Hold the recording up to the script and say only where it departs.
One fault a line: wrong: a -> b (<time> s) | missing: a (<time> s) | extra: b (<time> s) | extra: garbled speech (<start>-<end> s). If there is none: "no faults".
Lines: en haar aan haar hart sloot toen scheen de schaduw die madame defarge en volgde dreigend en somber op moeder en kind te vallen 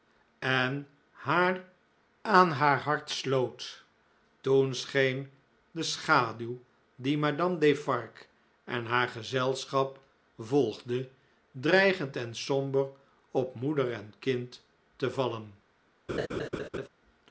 extra: haar gezelschap (8.9 s)